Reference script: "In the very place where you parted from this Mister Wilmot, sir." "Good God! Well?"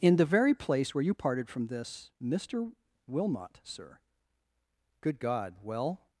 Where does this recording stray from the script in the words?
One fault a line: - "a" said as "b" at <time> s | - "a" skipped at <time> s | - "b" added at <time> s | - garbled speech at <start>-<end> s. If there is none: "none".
none